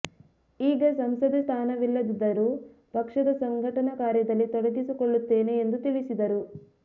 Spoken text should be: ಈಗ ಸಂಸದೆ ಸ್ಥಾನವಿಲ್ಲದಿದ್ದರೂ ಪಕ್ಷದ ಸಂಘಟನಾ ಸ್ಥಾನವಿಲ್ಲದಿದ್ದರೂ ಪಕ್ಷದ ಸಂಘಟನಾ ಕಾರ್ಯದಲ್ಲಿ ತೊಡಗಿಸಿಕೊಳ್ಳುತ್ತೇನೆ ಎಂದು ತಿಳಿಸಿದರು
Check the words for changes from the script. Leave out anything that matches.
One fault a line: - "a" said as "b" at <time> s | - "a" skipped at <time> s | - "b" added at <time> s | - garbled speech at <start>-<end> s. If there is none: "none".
- "ಸ್ಥಾನವಿಲ್ಲದಿದ್ದರೂ ಪಕ್ಷದ ಸಂಘಟನಾ" skipped at 3.9 s